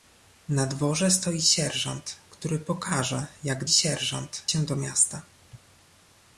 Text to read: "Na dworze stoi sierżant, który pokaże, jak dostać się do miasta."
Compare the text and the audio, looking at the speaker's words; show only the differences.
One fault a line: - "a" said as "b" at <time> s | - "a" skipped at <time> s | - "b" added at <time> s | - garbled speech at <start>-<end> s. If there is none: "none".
- "dostać" said as "sierżant" at 3.7 s